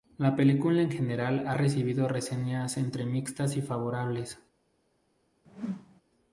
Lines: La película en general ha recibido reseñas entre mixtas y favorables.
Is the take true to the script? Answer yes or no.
yes